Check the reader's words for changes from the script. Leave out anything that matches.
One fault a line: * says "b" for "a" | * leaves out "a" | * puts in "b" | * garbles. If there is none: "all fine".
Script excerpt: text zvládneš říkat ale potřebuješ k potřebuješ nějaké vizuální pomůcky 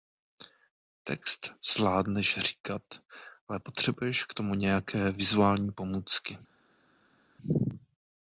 * says "tomu" for "potřebuješ"